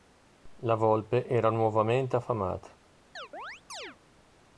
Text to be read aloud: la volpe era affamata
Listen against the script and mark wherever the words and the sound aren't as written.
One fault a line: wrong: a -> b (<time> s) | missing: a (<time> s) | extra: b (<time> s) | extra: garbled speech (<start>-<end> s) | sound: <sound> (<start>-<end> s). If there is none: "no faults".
extra: nuovamente (1.5 s)
sound: chirp (3.2-4.0 s)